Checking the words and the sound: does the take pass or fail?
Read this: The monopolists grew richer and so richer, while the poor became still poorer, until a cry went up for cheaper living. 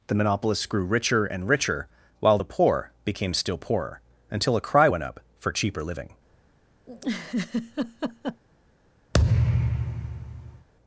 fail